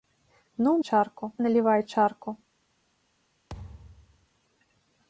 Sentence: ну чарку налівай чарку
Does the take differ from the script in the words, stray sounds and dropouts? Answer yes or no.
yes